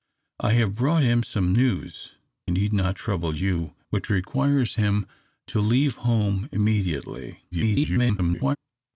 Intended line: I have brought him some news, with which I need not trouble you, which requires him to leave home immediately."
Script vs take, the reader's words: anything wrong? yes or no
yes